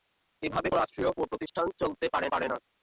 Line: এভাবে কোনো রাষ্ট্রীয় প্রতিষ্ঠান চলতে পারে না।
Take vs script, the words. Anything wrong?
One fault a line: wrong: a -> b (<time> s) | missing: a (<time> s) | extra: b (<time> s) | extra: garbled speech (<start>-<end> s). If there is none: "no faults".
missing: কোনো (0.7 s)
extra: পারে (2.3 s)